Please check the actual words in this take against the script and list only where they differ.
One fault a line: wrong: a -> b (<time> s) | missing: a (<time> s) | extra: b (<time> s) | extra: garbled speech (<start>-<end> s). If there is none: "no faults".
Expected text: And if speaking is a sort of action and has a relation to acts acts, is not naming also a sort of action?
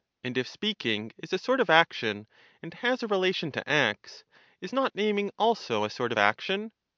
missing: acts (4.2 s)